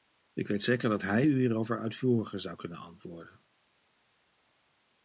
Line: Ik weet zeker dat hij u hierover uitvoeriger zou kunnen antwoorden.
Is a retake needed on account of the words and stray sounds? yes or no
no